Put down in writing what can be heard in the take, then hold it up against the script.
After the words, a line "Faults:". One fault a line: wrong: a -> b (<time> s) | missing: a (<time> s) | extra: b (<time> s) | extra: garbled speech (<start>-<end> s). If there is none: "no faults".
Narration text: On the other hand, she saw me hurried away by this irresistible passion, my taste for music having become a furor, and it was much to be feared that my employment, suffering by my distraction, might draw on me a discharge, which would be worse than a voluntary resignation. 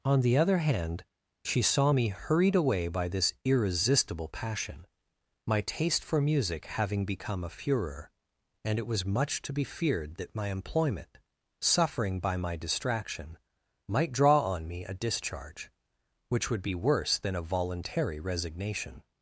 On the other hand, she saw me hurried away by this irresistible passion, my taste for music having become a furor, and it was much to be feared that my employment, suffering by my distraction, might draw on me a discharge, which would be worse than a voluntary resignation.
Faults:
no faults